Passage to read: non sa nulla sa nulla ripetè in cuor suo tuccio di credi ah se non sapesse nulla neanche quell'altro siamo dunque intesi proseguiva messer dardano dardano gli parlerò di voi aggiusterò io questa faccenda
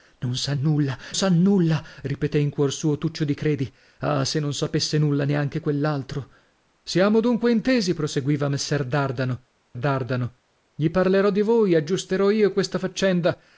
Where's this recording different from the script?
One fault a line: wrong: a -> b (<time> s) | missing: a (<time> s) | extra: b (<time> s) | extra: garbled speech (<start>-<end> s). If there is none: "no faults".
no faults